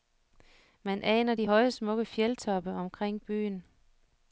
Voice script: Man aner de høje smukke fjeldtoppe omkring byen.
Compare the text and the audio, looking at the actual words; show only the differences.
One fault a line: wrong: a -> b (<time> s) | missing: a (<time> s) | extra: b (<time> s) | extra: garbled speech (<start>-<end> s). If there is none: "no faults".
no faults